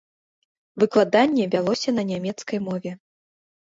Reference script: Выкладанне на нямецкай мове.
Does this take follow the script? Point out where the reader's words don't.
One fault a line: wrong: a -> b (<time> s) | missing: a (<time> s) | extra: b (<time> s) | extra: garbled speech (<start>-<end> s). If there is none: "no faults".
extra: вялося (1.5 s)